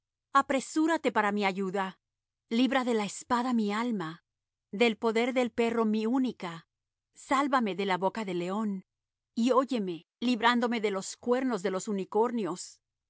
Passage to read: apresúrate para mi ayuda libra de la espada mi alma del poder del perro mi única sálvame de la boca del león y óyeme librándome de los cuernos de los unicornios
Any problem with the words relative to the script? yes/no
no